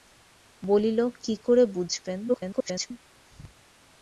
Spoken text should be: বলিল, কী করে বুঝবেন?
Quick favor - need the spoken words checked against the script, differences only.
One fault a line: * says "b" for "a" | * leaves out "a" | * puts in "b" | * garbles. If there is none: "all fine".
* garbles